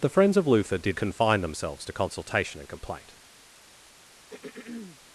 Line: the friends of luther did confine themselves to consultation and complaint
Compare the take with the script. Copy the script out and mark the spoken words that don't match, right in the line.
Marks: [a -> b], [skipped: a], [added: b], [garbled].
the friends of luther did confine themselves to consultation and complaint